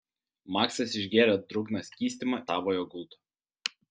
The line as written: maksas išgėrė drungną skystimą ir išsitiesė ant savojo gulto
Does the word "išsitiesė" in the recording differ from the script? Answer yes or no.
yes